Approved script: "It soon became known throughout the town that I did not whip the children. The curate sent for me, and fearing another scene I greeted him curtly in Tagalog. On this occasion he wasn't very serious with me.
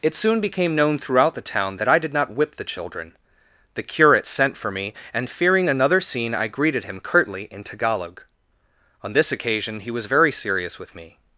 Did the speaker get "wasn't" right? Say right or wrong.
wrong